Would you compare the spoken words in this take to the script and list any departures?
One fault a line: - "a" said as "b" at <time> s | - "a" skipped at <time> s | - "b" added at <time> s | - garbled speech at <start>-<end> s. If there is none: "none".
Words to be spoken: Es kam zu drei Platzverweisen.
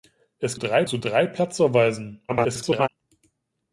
- "kam" said as "drei" at 0.5 s
- garbled speech at 2.3-2.9 s